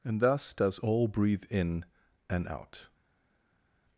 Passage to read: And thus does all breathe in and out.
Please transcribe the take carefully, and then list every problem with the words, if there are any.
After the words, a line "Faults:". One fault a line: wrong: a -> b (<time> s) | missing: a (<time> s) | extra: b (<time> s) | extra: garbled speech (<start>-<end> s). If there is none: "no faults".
And thus does all breathe in and out.
Faults:
no faults